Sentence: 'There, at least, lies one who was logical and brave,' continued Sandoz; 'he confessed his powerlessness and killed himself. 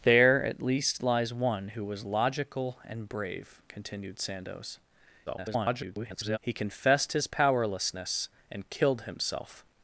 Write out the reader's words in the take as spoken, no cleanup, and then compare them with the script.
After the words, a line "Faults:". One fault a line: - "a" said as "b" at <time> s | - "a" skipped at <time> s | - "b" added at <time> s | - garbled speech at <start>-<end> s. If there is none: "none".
'There, at least, lies one who was logical and brave,' continued Sandoz; [garbled] 'he confessed his powerlessness and killed himself.
Faults:
- garbled speech at 5.3-6.4 s